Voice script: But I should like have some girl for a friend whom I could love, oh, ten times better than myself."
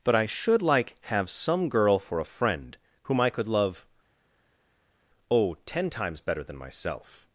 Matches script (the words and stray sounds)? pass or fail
pass